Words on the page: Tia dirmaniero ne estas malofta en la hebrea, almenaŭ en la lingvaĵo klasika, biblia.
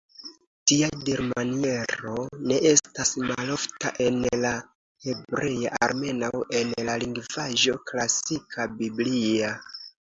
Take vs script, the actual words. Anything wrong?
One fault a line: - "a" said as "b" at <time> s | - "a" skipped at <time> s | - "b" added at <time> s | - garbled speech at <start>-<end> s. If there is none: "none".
none